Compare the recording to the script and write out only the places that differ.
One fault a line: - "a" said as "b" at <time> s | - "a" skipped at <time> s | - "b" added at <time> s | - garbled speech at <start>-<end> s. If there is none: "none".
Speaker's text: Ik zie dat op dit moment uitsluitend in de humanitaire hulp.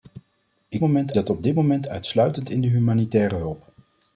- "zie" said as "moment" at 0.8 s